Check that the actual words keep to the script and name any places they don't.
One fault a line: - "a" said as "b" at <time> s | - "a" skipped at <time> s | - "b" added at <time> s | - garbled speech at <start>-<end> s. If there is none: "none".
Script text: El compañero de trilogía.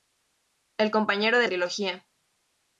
none